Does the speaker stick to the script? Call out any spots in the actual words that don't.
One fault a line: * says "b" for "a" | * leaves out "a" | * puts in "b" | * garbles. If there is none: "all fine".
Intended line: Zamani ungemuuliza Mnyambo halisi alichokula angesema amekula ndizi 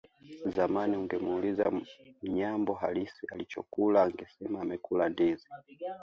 all fine